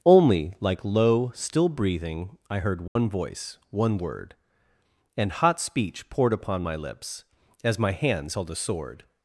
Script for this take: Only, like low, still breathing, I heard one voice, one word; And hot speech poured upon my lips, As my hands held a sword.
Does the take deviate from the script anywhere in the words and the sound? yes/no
yes